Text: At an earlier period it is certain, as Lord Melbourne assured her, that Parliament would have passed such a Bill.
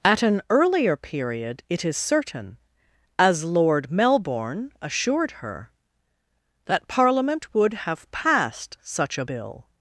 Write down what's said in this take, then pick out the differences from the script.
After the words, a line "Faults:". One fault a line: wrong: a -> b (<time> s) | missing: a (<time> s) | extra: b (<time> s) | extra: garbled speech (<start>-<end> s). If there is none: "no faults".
At an earlier period it is certain, as Lord Melbourne assured her, that Parliament would have passed such a Bill.
Faults:
no faults